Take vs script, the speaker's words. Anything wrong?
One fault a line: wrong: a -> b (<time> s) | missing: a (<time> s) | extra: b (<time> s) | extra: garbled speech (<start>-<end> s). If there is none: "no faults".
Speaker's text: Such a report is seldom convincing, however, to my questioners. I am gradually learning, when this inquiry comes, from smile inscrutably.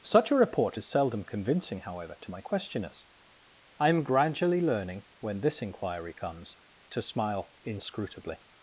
wrong: from -> to (6.9 s)